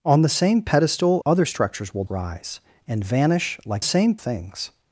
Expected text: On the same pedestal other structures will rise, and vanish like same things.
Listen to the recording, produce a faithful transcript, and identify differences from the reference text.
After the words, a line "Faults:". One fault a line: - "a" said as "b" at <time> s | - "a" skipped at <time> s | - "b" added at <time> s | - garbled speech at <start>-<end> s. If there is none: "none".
On the same pedestal other structures will rise, and vanish like same things.
Faults:
none